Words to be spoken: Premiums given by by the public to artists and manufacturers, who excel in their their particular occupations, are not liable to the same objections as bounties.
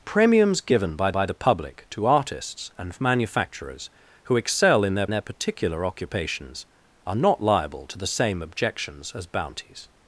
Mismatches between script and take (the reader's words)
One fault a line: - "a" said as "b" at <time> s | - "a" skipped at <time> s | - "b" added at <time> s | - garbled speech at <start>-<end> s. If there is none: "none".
none